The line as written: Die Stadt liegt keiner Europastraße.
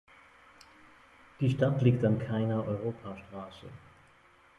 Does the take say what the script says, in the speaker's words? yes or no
no